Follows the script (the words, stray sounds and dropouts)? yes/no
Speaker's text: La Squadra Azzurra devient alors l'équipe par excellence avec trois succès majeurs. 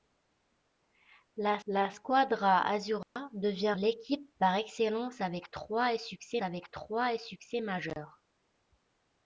no